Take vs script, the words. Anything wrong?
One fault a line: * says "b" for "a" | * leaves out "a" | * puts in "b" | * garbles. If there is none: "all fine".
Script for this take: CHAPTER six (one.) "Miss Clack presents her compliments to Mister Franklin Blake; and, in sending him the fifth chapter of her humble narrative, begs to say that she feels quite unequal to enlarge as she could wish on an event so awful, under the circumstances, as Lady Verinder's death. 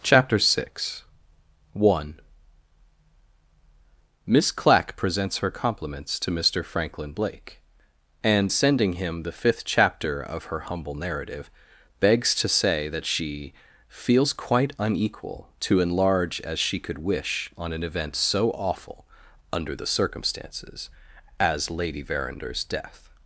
* leaves out "in"